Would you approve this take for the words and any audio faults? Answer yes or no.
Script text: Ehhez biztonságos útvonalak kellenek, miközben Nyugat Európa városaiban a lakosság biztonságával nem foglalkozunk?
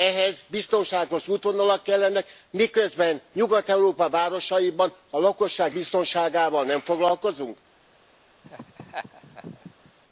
no